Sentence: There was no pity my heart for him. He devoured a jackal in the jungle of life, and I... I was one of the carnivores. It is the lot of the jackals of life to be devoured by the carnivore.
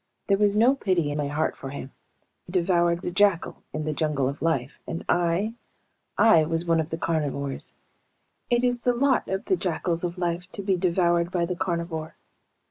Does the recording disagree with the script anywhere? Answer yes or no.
no